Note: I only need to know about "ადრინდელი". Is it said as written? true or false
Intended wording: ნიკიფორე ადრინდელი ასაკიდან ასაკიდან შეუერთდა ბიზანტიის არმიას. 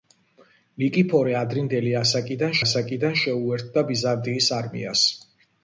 true